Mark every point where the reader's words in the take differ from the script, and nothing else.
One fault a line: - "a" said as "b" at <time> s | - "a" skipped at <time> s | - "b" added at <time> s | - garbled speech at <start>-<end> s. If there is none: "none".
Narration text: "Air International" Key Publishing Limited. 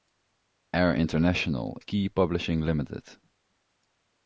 none